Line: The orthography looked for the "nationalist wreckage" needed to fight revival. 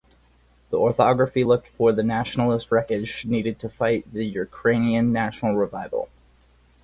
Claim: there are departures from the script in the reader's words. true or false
true